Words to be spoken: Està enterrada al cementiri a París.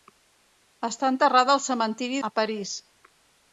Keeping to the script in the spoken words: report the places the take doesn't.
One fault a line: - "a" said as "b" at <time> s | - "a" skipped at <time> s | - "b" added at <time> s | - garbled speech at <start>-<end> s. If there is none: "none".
none